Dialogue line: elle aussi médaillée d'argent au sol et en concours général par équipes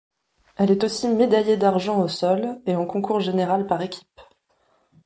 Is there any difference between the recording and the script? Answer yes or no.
yes